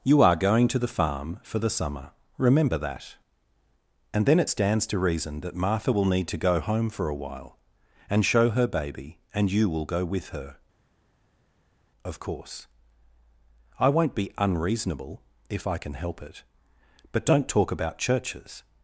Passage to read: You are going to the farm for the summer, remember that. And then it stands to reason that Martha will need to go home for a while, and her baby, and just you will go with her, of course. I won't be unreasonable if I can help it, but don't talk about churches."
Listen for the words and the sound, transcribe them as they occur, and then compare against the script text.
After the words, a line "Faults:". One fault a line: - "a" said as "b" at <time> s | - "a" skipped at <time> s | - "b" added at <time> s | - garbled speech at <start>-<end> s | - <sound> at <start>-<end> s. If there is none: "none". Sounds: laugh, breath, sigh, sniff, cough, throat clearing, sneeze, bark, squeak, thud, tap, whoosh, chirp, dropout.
You are going to the farm for the summer, remember that. And then it stands to reason that Martha will need to go home for a while, and show her baby, and you will go with her, of course. I won't be unreasonable if I can help it, but don't talk about churches."
Faults:
- "show" added at 8.2 s
- "just" skipped at 9.5 s